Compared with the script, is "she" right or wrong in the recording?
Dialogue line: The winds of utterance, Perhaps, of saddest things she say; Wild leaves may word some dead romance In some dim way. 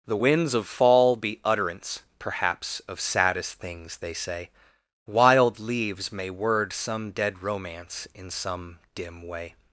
wrong